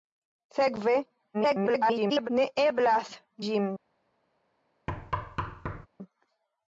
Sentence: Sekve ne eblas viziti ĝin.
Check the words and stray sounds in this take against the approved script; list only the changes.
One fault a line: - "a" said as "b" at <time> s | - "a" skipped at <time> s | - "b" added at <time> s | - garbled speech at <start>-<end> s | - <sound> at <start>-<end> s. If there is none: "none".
- garbled speech at 1.3-2.3 s
- "viziti" skipped at 3.1 s
- thud at 4.9-5.9 s